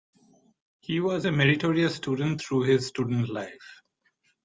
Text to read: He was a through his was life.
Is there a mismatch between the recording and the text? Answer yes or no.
yes